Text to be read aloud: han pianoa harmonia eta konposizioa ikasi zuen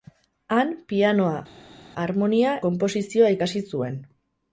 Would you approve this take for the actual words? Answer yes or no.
no